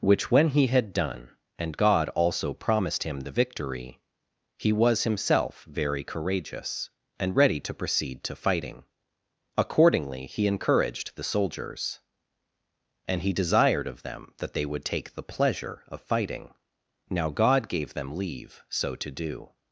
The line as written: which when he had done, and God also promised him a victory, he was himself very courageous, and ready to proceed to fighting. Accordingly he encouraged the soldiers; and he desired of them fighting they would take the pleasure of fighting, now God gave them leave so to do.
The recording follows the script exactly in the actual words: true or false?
false